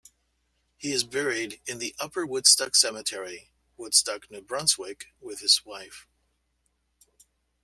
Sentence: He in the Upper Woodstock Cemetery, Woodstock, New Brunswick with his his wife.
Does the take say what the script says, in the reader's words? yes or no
no